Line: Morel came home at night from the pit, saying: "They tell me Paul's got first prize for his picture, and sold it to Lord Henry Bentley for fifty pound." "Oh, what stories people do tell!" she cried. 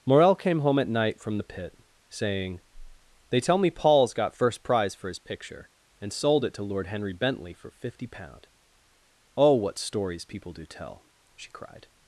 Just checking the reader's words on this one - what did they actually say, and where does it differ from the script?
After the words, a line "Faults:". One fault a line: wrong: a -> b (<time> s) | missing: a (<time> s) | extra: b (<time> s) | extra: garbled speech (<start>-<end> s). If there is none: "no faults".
Morel came home at night from the pit, saying: "They tell me Paul's got first prize for his picture, and sold it to Lord Henry Bentley for fifty pound." "Oh, what stories people do tell!" she cried.
Faults:
no faults